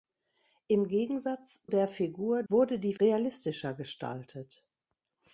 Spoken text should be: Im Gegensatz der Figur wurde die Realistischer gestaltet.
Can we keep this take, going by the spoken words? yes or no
yes